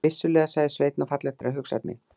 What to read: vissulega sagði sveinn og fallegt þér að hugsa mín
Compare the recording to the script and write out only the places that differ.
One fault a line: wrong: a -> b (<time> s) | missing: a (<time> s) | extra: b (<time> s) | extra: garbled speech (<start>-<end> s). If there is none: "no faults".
no faults